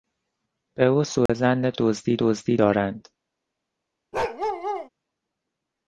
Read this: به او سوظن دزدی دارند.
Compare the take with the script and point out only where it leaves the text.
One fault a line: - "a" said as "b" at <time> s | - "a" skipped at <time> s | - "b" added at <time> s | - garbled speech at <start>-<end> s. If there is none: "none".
- "دزدی" added at 2.2 s